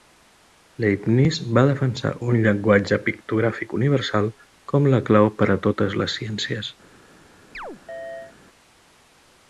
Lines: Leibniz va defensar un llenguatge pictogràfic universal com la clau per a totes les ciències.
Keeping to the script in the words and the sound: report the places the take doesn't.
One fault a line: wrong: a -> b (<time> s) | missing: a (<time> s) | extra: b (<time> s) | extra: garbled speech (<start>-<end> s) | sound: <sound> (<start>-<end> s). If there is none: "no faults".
sound: chirp (7.5-8.4 s)